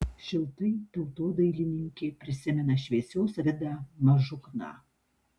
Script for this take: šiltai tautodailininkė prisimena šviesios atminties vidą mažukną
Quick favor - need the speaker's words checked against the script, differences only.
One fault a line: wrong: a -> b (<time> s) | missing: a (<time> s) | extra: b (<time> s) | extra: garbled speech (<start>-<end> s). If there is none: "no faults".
missing: atminties (3.4 s)